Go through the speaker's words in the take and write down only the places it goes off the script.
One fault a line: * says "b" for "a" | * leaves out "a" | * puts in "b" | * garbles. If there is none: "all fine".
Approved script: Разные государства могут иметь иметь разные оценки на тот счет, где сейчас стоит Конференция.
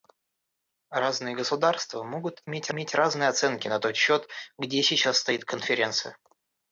all fine